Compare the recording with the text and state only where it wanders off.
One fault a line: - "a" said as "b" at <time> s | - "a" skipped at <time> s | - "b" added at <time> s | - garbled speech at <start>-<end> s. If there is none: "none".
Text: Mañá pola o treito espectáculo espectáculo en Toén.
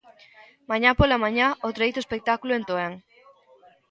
- "mañá" added at 1.2 s
- "espectáculo" skipped at 2.5 s